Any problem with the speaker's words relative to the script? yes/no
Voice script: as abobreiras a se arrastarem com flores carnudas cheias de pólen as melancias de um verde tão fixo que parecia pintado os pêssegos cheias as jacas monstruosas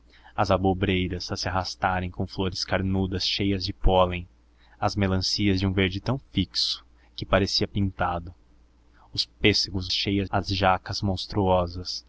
no